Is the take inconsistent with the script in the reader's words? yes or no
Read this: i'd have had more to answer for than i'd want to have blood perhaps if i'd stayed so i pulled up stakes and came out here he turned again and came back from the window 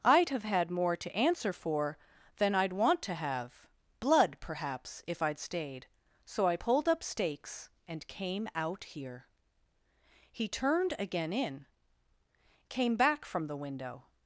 yes